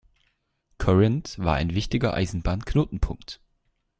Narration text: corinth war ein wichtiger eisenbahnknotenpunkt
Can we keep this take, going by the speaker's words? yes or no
yes